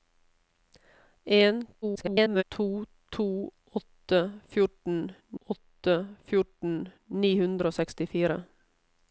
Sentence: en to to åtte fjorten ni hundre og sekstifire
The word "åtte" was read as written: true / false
true